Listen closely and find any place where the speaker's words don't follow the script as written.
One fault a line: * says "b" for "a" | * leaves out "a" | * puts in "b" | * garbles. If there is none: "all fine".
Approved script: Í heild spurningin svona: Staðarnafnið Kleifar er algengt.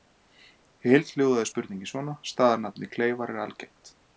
* puts in "hljóðaði"